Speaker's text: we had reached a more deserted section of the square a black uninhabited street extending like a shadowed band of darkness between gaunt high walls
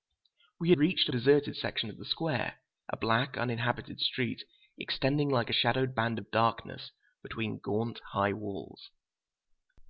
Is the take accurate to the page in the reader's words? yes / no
no